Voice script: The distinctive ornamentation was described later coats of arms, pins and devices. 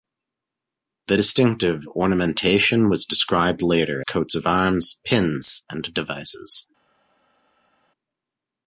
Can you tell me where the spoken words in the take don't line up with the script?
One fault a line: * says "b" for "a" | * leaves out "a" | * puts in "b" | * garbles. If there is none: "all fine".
all fine